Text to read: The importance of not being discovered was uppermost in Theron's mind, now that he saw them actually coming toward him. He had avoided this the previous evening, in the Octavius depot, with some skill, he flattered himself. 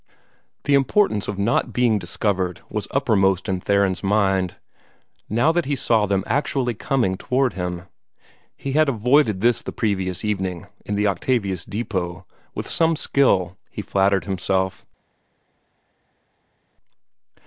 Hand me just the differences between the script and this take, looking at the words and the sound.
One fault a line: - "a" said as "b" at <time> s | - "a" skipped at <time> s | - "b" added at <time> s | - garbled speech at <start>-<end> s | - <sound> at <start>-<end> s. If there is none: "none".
none